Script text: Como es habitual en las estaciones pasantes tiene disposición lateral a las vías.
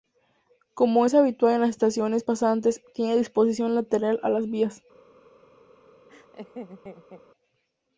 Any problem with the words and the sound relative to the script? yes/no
yes